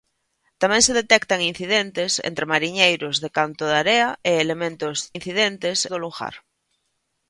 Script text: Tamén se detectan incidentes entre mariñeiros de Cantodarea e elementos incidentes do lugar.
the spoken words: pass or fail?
pass